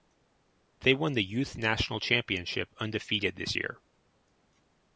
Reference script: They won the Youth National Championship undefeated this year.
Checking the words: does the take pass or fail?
pass